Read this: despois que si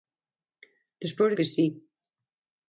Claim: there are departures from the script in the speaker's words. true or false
false